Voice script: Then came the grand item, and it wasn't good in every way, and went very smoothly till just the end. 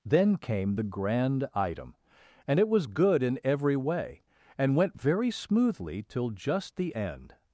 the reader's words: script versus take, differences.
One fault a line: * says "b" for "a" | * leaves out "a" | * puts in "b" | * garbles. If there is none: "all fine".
* says "was" for "wasn't"